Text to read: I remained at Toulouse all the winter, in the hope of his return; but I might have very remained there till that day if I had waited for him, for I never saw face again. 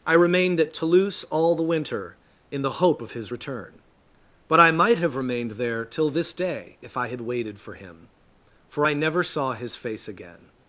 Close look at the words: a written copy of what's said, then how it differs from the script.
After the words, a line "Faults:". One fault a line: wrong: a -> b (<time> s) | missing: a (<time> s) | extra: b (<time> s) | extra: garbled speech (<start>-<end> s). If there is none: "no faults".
I remained at Toulouse all the winter, in the hope of his return; but I might have remained there till this day if I had waited for him, for I never saw his face again.
Faults:
missing: very (5.1 s)
wrong: that -> this (6.1 s)
extra: his (9.5 s)